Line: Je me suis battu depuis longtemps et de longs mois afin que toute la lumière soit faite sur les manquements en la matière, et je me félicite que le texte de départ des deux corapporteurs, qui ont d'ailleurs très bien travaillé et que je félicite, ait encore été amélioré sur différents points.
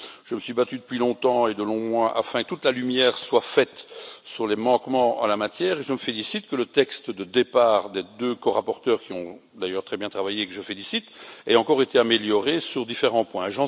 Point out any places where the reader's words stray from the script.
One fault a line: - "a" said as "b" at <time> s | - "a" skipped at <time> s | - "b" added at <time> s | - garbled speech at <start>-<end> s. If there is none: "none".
none